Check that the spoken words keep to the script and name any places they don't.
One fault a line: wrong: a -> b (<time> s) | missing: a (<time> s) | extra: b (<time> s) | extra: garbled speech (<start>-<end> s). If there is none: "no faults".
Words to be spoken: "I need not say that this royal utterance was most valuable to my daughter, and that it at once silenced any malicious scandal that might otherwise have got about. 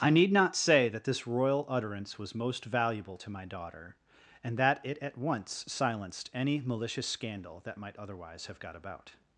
no faults